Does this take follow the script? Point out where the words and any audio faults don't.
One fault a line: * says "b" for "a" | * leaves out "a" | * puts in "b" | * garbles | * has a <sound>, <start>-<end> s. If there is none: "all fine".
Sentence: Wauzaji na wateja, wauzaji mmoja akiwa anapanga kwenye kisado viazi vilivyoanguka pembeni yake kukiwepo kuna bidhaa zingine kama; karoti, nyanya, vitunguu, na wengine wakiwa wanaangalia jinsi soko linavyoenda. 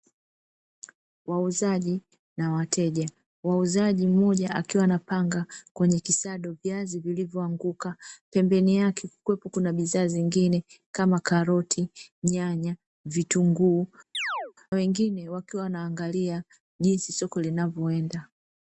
* leaves out "na"
* has a chirp, 14.1-14.5 s